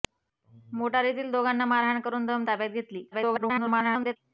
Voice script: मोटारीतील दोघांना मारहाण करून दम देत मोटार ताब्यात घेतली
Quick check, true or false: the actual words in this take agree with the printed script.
false